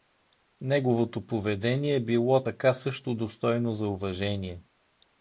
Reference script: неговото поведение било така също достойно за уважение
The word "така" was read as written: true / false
true